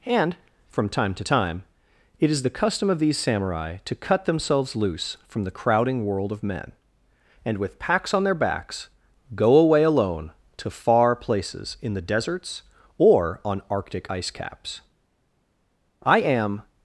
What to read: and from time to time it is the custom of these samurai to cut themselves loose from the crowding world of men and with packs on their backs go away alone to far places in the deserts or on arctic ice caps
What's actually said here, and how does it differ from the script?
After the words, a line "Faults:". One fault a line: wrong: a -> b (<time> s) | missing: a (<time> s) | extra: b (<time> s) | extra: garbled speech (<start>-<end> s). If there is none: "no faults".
and from time to time it is the custom of these samurai to cut themselves loose from the crowding world of men and with packs on their backs go away alone to far places in the deserts or on arctic ice caps i am
Faults:
extra: i am (16.0 s)